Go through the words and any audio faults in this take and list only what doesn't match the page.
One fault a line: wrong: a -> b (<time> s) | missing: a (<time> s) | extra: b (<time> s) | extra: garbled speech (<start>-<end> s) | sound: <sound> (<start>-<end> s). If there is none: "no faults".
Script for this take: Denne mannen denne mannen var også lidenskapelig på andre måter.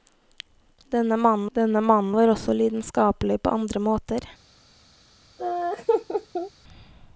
sound: laugh (5.4-6.5 s)